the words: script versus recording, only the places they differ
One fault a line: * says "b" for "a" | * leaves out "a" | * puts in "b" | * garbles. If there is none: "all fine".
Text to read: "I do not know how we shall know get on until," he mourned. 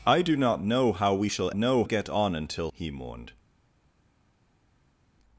all fine